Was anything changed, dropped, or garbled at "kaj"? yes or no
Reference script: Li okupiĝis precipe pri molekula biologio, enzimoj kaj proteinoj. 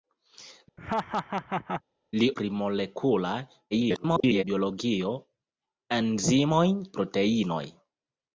yes